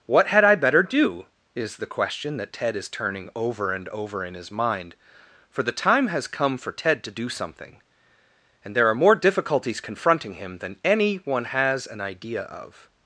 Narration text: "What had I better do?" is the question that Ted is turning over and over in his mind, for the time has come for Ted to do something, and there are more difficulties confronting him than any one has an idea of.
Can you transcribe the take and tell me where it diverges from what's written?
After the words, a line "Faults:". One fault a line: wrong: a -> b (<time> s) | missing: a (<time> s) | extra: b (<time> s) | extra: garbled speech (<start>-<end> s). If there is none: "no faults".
"What had I better do?" is the question that Ted is turning over and over in his mind, for the time has come for Ted to do something, and there are more difficulties confronting him than any one has an idea of.
Faults:
no faults